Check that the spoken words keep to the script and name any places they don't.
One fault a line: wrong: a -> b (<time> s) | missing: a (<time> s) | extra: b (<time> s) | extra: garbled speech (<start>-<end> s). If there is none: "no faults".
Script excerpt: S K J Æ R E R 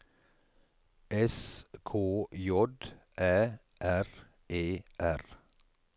no faults